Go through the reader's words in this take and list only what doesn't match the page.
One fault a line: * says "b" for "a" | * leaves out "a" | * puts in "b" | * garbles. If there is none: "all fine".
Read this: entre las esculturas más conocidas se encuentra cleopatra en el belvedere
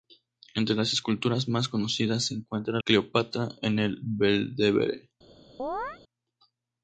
all fine